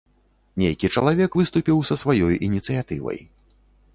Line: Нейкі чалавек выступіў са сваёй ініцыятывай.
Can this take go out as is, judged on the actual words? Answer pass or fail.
pass